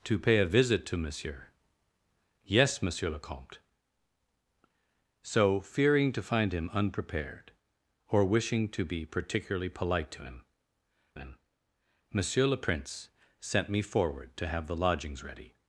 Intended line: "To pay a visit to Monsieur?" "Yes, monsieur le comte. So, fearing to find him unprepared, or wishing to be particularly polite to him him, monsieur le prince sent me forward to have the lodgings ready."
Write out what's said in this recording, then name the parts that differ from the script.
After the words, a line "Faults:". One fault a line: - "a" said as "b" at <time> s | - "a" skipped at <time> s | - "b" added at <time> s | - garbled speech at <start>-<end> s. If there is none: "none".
"To pay a visit to Monsieur?" "Yes, monsieur le comte. So, fearing to find him unprepared, or wishing to be particularly polite to him him, monsieur le prince sent me forward to have the lodgings ready."
Faults:
none